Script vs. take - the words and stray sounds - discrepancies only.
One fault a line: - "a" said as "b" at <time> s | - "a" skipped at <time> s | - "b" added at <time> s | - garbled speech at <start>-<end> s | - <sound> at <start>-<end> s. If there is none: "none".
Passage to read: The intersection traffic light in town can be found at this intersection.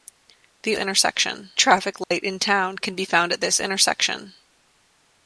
- dropout at 2.0-2.1 s